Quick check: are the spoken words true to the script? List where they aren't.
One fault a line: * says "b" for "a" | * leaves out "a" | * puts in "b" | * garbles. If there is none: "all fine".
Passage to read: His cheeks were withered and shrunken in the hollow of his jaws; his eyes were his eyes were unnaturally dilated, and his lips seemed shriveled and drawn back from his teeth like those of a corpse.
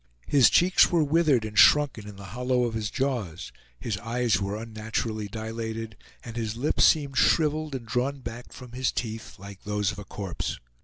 * leaves out "his eyes were"